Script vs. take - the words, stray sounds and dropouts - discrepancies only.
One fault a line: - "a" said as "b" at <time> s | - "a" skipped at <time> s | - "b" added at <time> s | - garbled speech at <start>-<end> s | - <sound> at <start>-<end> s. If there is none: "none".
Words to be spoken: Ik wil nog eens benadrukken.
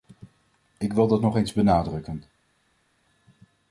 - "dat" added at 1.1 s